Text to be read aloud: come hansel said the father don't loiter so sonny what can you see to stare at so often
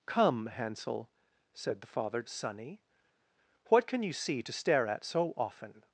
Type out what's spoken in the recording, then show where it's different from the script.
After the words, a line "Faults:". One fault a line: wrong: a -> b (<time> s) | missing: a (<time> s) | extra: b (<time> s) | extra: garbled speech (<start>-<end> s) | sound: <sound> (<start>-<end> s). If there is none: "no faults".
come hansel said the father sonny what can you see to stare at so often
Faults:
missing: don't loiter so (2.2 s)